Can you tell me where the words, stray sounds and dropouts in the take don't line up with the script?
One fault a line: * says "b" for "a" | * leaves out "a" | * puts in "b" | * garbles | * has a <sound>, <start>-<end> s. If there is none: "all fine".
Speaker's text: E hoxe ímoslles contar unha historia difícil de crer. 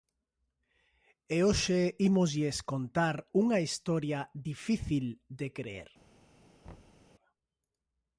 * has a thud, 6.6-7.0 s